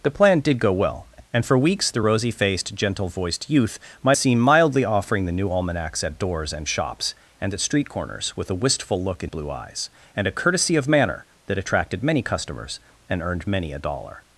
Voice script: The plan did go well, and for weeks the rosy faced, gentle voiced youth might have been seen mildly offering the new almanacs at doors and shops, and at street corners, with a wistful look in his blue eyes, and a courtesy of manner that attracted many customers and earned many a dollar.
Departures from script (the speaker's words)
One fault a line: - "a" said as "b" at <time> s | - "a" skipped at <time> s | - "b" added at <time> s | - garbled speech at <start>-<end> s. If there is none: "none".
- "have been" skipped at 4.2 s
- "his" skipped at 9.3 s